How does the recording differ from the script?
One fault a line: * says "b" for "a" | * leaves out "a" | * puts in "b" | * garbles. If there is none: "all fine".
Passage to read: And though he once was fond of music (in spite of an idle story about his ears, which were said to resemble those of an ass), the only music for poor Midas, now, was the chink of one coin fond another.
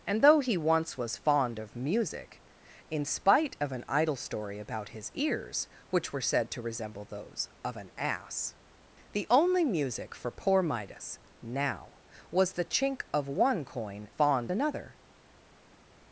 all fine